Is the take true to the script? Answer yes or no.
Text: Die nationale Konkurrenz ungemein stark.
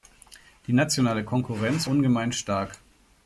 yes